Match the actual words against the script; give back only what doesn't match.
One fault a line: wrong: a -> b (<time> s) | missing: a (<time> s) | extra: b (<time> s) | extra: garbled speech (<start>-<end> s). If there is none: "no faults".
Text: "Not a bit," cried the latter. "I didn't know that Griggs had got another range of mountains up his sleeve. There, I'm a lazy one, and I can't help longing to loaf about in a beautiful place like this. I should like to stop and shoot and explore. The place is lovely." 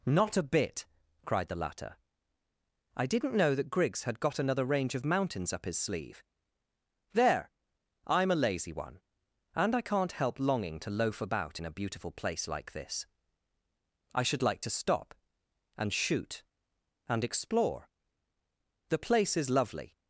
no faults